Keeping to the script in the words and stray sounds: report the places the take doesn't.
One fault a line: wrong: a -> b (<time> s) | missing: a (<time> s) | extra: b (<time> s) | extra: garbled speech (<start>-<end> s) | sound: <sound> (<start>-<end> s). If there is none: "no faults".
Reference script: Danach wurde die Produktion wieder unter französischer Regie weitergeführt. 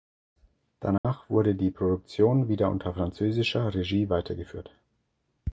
sound: dropout (1.0-1.0 s)